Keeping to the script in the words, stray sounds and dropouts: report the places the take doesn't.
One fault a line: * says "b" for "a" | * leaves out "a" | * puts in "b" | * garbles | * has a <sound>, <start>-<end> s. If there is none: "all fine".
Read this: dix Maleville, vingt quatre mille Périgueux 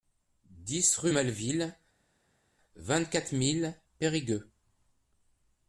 * puts in "rue"